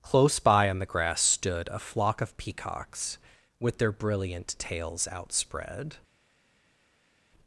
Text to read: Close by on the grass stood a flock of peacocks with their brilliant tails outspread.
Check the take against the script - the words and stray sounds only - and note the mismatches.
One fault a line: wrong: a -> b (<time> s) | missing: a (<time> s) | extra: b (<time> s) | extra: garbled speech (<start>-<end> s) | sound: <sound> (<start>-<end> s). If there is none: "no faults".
no faults